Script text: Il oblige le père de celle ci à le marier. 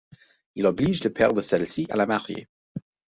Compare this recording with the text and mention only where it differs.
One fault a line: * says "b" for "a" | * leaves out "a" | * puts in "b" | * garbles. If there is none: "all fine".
* says "la" for "le"